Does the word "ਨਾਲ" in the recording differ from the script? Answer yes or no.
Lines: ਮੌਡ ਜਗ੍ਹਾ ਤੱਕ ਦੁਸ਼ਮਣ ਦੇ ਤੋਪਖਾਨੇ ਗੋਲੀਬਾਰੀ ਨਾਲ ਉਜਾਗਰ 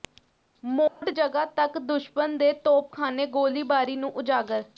yes